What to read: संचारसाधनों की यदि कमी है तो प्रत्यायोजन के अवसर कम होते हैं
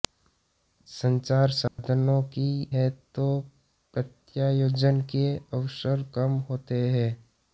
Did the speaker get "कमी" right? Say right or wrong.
wrong